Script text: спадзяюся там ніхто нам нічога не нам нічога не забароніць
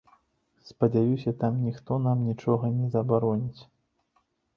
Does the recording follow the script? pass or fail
fail